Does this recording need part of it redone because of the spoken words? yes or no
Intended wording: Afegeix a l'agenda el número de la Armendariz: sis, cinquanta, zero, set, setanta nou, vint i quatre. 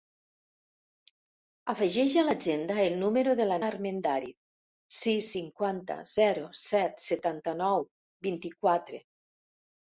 no